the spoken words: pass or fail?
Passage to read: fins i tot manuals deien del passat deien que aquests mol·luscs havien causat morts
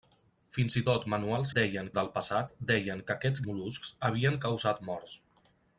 pass